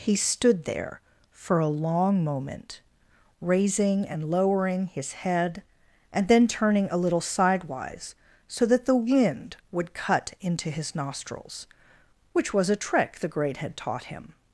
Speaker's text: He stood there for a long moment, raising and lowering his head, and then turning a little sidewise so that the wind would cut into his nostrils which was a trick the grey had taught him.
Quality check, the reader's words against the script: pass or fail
fail